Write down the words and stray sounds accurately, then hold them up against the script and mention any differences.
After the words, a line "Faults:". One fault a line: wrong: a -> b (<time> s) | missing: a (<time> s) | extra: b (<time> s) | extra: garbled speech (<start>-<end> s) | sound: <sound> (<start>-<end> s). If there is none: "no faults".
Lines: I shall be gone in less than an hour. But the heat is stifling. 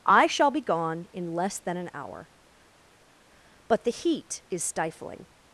I shall be gone in less than an hour. But the heat is stifling.
Faults:
no faults